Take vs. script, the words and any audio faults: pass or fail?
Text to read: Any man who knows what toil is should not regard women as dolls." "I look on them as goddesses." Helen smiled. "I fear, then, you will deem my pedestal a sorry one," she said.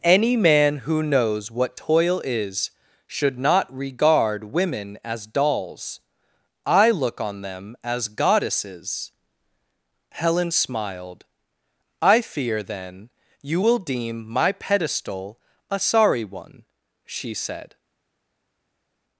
pass